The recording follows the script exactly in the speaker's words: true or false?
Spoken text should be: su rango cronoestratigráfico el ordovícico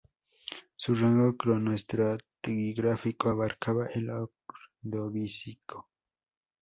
false